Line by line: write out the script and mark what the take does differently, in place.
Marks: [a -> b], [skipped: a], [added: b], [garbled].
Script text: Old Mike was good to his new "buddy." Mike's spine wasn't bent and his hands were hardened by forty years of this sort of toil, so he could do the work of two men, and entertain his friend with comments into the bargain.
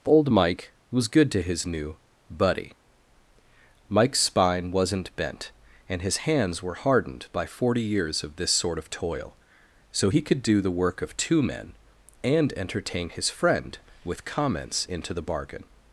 Old Mike was good to his new "buddy." Mike's spine wasn't bent and his hands were hardened by forty years of this sort of toil, so he could do the work of two men, and entertain his friend with comments into the bargain.